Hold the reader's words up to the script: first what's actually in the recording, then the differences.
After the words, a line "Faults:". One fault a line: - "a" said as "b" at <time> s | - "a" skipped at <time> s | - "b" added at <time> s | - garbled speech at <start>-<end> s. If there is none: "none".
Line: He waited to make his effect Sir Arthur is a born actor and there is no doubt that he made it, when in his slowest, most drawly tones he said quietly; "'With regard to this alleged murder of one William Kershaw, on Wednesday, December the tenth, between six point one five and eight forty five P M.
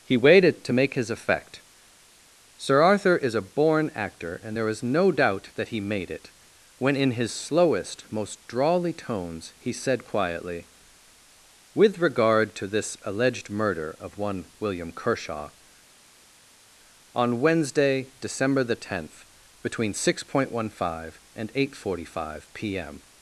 He waited to make his effect Sir Arthur is a born actor and there is no doubt that he made it, when in his slowest, most drawly tones he said quietly; "'With regard to this alleged murder of one William Kershaw, on Wednesday, December the tenth, between six point one five and eight forty five P M.
Faults:
none